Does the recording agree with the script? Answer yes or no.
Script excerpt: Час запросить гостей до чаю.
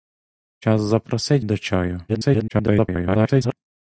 no